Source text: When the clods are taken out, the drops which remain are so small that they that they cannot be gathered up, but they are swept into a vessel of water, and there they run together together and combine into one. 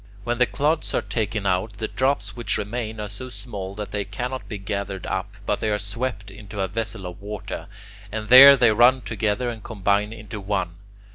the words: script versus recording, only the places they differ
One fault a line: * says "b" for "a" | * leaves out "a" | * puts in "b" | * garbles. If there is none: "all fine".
* leaves out "that they"
* leaves out "together"